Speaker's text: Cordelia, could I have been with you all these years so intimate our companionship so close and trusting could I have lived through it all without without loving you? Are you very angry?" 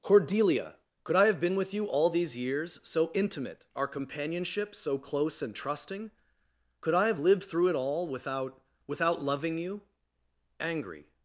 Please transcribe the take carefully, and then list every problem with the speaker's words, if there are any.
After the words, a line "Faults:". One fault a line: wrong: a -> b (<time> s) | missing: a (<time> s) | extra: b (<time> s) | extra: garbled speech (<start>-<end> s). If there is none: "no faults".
Cordelia, could I have been with you all these years so intimate our companionship so close and trusting could I have lived through it all without without loving you? Angry?"
Faults:
missing: Are you very (9.8 s)